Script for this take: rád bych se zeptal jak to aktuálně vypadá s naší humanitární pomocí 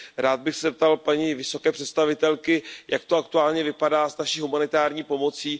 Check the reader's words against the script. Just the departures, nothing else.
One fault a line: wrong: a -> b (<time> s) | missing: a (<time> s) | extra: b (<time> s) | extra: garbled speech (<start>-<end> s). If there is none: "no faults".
extra: paní vysoké představitelky (1.0 s)